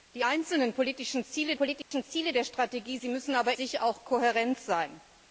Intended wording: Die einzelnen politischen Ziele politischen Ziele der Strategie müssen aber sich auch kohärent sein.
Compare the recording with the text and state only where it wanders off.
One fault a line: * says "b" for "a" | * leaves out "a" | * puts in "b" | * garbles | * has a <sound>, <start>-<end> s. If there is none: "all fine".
* has a dropout, 1.8-1.9 s